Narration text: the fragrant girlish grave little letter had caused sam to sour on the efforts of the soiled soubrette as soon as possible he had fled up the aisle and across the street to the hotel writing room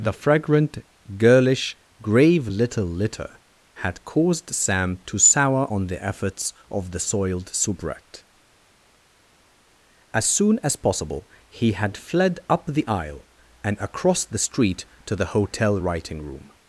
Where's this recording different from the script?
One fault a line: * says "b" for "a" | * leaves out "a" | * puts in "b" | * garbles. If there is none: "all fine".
* says "litter" for "letter"